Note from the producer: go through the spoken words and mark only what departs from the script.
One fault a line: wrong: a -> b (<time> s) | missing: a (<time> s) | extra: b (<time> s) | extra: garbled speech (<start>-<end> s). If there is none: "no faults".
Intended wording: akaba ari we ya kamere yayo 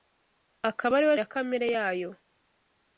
no faults